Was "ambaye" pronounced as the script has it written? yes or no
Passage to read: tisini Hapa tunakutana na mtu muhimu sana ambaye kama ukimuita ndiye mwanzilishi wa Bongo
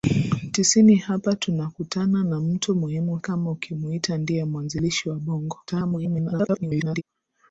no